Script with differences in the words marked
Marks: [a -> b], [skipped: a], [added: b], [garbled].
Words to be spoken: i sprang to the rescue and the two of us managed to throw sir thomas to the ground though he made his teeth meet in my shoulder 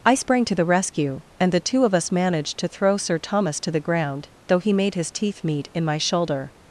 i sprang to the rescue and the two of us managed to throw sir thomas to the ground though he made his teeth meet in my shoulder